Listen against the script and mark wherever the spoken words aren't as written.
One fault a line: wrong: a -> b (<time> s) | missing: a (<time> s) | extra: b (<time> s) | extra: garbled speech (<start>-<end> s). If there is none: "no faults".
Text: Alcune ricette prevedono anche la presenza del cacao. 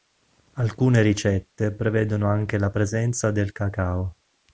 no faults